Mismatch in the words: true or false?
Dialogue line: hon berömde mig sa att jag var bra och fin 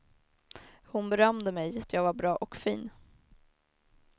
true